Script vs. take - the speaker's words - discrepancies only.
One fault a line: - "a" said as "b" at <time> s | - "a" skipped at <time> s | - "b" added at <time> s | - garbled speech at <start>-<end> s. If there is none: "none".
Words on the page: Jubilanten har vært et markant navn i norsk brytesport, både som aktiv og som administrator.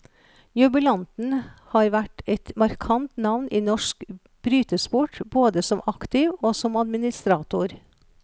none